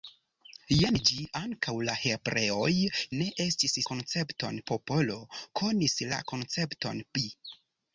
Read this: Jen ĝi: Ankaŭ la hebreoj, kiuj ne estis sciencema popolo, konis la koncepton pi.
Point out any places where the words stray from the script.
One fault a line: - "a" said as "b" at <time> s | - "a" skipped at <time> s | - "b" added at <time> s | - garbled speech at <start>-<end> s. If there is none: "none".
- "kiuj" skipped at 2.7 s
- "sciencema" said as "koncepton" at 3.9 s